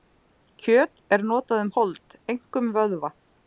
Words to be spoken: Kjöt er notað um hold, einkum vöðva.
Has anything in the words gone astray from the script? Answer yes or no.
no